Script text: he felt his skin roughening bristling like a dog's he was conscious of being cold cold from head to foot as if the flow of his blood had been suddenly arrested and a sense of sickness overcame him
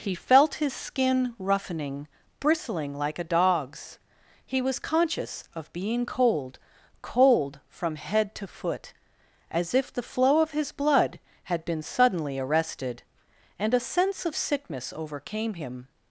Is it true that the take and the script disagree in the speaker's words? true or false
false